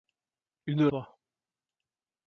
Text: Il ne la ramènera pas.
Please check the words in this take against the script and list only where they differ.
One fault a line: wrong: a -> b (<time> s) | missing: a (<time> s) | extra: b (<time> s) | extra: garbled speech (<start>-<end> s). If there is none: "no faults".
missing: la ramènera (0.9 s)